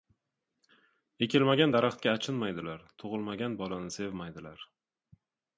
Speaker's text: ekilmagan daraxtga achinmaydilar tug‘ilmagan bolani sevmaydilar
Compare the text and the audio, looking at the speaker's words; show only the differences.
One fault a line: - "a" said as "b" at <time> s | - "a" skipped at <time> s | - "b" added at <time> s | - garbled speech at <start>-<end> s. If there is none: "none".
none